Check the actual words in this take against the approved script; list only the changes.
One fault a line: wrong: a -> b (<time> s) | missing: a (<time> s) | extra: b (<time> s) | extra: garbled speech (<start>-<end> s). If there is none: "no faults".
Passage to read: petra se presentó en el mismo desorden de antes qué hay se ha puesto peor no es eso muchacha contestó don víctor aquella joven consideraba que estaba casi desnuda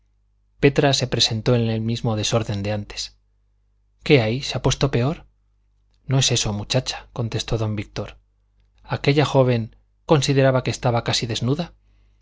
no faults